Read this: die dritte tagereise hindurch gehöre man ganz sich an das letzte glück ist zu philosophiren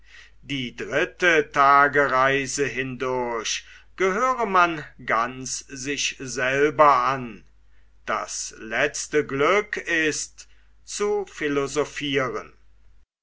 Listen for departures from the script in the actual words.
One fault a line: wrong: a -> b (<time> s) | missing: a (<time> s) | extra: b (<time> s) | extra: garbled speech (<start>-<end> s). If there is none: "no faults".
extra: selber (6.2 s)